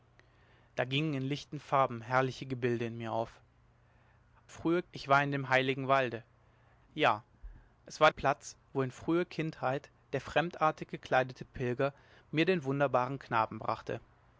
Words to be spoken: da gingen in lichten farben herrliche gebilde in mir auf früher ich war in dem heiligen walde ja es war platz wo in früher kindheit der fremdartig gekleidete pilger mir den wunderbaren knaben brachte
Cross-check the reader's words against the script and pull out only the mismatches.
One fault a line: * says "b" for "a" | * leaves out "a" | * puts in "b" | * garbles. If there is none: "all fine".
all fine